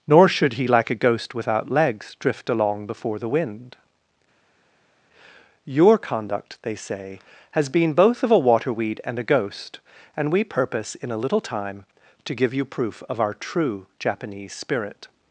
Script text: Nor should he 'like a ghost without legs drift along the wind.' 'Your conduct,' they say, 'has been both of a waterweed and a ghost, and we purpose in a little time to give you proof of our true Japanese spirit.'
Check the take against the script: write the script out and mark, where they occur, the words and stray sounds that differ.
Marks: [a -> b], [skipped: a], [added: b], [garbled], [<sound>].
Nor should he 'like a ghost without legs drift along [added: before] the wind.' 'Your conduct,' they say, 'has been both of a waterweed and a ghost, and we purpose in a little time to give you proof of our true Japanese spirit.'